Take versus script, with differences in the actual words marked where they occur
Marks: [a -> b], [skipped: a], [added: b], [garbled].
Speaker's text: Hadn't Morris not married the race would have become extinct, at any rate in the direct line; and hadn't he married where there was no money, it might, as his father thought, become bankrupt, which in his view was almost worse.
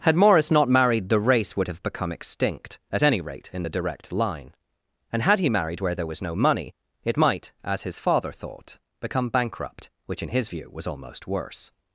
[Hadn't -> Had] Morris not married the race would have become extinct, at any rate in the direct line; and [hadn't -> had] he married where there was no money, it might, as his father thought, become bankrupt, which in his view was almost worse.